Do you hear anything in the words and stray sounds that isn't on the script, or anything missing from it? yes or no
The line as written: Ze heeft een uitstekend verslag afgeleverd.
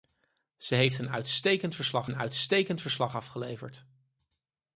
yes